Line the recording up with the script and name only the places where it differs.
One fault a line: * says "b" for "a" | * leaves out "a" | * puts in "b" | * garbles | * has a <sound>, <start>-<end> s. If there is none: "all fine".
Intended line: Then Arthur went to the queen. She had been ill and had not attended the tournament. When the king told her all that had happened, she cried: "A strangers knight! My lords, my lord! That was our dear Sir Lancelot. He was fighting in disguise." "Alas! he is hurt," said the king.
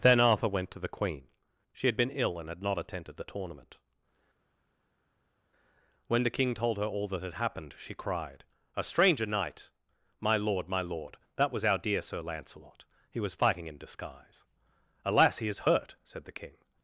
* says "stranger" for "strangers"
* says "lord" for "lords"